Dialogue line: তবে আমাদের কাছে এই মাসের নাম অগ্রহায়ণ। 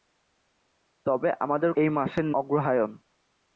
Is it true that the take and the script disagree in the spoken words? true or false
true